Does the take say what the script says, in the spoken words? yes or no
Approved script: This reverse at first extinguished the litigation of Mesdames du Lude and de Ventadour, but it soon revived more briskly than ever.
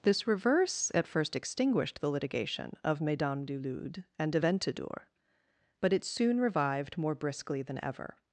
yes